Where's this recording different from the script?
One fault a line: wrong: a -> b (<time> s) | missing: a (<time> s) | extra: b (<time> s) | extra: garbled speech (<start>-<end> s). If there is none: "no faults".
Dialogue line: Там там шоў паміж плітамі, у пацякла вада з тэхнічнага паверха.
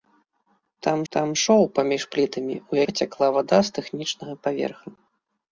no faults